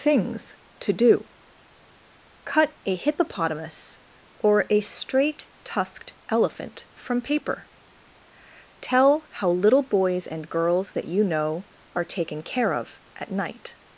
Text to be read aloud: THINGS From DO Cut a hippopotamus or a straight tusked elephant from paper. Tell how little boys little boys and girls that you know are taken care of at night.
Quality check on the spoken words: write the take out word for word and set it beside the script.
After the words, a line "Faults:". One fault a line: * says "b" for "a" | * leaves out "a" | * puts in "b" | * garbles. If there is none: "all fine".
THINGS TO DO Cut a hippopotamus or a straight tusked elephant from paper. Tell how little boys and girls that you know are taken care of at night.
Faults:
* says "TO" for "From"
* leaves out "little boys"